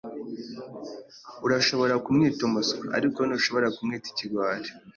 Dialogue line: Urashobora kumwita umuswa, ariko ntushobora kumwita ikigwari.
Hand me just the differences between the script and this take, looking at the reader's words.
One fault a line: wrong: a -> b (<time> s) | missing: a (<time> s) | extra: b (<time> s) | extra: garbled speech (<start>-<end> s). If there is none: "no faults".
no faults